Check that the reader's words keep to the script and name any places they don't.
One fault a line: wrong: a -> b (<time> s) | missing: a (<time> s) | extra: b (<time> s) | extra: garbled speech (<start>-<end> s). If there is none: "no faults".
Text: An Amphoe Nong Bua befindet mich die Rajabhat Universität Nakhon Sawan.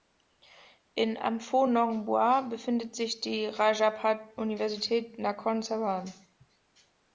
wrong: An -> In (0.9 s)
wrong: mich -> sich (2.9 s)